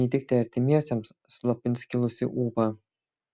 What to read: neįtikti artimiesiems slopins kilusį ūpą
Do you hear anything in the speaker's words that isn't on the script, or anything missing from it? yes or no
no